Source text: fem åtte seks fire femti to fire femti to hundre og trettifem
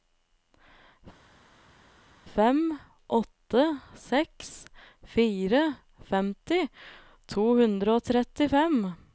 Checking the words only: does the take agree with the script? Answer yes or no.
no